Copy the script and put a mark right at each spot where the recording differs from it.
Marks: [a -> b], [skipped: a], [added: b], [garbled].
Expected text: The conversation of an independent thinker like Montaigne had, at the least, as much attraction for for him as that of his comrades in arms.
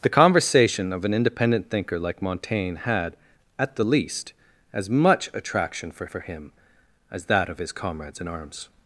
The conversation of an independent thinker like Montaigne had, at the least, as much attraction for for him as that of his comrades in arms.